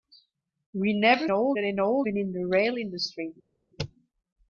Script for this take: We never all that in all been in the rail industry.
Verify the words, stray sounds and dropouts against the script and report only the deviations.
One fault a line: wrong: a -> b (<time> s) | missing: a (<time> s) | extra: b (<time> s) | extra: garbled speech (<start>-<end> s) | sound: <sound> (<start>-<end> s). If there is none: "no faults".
no faults